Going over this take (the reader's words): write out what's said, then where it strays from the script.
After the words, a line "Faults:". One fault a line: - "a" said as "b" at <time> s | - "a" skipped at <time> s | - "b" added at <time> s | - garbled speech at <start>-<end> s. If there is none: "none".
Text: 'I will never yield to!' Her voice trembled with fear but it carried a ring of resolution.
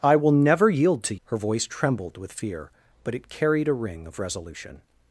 'I will never yield to!' Her voice trembled with fear but it carried a ring of resolution.
Faults:
none